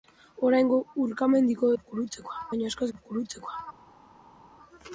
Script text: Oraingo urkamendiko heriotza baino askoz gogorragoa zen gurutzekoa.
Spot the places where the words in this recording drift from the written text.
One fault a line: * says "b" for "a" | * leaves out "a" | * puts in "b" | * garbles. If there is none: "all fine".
* says "gurutzekoa" for "heriotza"
* leaves out "gogorragoa zen"